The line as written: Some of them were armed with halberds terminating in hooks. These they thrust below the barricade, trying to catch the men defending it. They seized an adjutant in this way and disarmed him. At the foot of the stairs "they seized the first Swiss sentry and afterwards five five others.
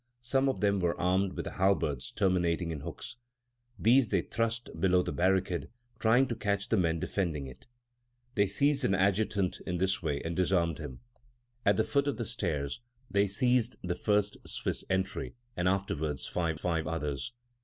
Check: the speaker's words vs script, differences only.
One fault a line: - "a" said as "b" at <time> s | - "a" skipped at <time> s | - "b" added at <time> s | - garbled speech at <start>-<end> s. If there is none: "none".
none